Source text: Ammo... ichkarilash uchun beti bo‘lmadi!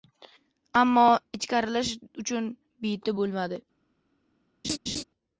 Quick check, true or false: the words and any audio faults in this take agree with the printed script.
false